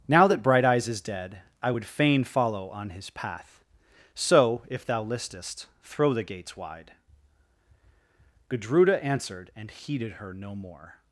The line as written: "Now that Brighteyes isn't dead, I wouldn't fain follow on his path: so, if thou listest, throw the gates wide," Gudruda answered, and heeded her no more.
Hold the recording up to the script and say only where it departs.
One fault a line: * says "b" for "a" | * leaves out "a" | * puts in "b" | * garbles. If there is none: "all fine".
* says "is" for "isn't"
* says "would" for "wouldn't"